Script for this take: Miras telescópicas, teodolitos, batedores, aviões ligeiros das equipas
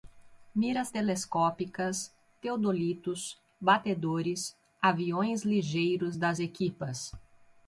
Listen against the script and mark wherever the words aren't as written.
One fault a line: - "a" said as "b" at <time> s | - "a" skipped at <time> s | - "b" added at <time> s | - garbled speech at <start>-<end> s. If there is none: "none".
none